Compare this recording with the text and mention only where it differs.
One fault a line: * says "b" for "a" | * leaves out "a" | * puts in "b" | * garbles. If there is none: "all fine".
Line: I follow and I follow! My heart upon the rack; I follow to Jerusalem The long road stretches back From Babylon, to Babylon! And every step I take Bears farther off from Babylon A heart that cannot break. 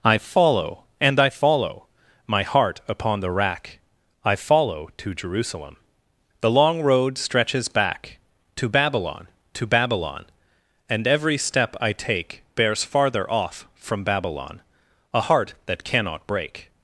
* says "To" for "From"